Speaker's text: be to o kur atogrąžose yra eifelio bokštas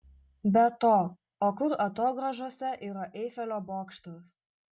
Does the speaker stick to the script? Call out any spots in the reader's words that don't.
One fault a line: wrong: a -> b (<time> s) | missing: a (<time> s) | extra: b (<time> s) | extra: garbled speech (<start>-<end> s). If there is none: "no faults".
no faults